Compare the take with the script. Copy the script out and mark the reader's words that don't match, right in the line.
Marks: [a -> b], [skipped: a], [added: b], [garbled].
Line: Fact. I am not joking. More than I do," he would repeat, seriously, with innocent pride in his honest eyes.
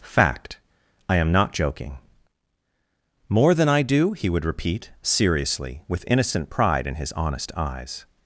Fact. I am not joking. More than I do," he would repeat, seriously, with innocent pride in his honest eyes.